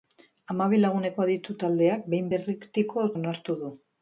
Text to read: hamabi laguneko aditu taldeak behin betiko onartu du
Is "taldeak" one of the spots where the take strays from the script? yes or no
no